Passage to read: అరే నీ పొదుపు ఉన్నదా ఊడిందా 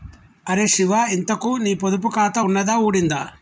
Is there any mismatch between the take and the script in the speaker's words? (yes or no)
yes